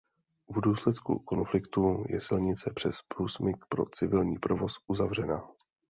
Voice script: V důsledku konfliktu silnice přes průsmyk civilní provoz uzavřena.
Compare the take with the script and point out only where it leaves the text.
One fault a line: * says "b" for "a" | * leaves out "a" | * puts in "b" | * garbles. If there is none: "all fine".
* puts in "je"
* puts in "pro"